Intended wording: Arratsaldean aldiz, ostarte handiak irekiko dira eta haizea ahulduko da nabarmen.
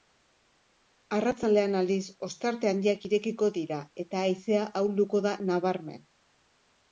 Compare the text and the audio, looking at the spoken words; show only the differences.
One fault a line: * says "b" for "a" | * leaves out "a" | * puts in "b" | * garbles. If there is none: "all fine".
all fine